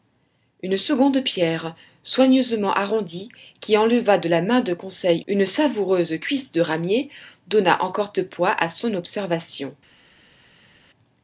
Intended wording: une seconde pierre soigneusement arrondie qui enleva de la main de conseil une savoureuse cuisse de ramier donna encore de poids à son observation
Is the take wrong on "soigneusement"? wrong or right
right